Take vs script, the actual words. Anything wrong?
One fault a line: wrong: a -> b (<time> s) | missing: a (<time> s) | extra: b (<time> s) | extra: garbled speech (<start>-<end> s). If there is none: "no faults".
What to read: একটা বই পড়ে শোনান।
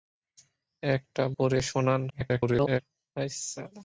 missing: বই (1.2 s)
extra: garbled speech (2.1-2.8 s)